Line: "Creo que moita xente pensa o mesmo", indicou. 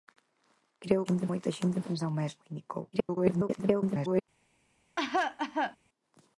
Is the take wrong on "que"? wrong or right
wrong